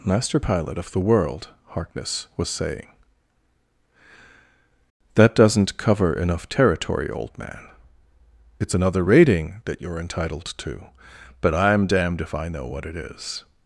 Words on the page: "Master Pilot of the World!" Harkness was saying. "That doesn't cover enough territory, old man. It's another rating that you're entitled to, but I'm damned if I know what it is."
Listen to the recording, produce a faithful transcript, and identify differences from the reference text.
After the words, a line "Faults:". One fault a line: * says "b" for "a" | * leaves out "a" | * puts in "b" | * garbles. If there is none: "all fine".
"Master Pilot of the World!" Harkness was saying. "That doesn't cover enough territory, old man. It's another rating that you're entitled to, but I'm damned if I know what it is."
Faults:
all fine